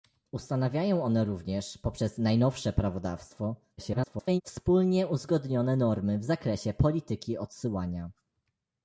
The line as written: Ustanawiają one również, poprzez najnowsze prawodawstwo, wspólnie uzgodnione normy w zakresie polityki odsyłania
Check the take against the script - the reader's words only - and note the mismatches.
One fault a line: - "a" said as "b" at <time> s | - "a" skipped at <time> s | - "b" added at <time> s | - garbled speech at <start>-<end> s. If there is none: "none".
- garbled speech at 3.8-4.4 s